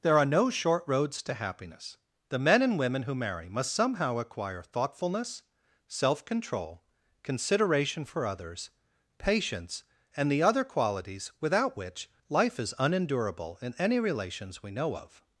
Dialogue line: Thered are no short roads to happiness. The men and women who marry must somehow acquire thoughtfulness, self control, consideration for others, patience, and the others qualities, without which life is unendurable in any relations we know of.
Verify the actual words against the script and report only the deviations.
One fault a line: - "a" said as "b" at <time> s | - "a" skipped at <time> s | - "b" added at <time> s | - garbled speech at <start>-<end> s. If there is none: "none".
- "Thered" said as "There" at 0.0 s
- "others" said as "other" at 10.4 s